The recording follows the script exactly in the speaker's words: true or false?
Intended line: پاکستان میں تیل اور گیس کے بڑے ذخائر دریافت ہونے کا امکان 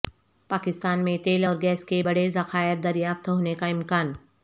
true